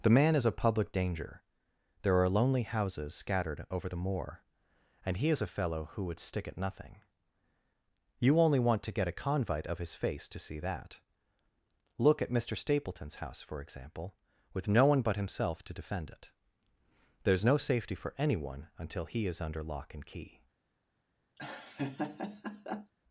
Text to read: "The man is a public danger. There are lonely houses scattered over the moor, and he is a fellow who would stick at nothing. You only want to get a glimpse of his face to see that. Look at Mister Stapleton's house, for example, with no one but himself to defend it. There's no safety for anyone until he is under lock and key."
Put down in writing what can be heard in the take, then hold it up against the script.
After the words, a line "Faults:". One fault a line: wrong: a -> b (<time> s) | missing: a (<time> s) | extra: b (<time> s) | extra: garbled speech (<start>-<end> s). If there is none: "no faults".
"The man is a public danger. There are lonely houses scattered over the moor, and he is a fellow who would stick at nothing. You only want to get a convite of his face to see that. Look at Mister Stapleton's house, for example, with no one but himself to defend it. There's no safety for anyone until he is under lock and key."
Faults:
wrong: glimpse -> convite (9.2 s)